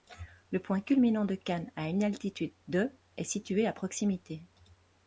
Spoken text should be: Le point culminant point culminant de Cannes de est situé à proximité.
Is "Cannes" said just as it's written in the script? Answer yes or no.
no